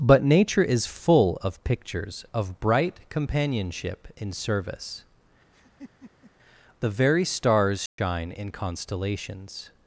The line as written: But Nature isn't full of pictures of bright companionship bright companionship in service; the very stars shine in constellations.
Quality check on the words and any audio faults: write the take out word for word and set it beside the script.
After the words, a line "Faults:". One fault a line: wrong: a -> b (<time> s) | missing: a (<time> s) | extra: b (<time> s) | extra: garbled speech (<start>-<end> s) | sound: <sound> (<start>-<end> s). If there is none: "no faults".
But Nature is full of pictures of bright companionship in service; the very stars shine in constellations.
Faults:
wrong: isn't -> is (0.6 s)
missing: bright companionship (4.1 s)
sound: laugh (5.5-6.3 s)
sound: dropout (7.9-8.0 s)